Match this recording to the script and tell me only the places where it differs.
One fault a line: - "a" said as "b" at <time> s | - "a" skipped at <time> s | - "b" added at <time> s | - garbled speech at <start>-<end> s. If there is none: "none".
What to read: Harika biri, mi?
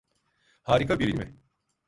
none